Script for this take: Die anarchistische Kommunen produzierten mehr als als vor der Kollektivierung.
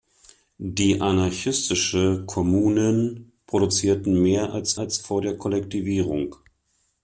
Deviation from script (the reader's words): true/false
false